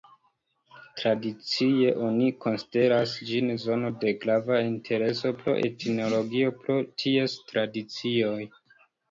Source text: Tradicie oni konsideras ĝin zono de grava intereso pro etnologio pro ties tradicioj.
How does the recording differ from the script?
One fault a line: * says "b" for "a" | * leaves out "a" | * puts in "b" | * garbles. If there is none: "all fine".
all fine